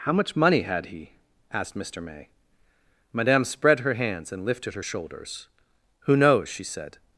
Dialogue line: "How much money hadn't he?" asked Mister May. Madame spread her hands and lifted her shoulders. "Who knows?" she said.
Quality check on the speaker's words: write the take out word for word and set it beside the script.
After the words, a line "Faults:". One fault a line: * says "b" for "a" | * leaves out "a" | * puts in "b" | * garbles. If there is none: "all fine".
"How much money had he?" asked Mister May. Madame spread her hands and lifted her shoulders. "Who knows?" she said.
Faults:
* says "had" for "hadn't"